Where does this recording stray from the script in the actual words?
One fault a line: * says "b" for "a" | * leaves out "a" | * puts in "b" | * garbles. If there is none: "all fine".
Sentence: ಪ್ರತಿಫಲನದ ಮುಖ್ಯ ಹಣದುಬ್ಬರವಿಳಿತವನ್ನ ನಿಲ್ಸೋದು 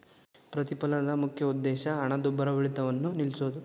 * puts in "ಉದ್ದೇಶ"